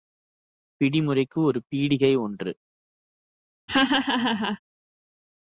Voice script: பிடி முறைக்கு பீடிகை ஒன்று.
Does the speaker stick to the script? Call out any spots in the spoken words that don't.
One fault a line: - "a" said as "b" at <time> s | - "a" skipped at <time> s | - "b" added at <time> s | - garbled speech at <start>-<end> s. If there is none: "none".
- "ஒரு" added at 1.4 s